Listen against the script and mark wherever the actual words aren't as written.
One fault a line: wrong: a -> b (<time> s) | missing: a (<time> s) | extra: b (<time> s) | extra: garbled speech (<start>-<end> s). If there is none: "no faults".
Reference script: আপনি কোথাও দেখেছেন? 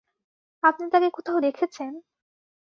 extra: তাকে (0.9 s)